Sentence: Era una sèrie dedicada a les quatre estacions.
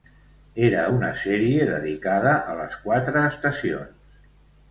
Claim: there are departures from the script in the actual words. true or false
false